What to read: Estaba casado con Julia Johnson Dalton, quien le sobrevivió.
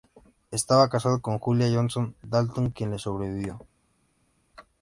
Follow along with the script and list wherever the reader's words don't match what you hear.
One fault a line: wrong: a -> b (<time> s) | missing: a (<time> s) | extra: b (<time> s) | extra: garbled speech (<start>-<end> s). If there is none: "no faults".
no faults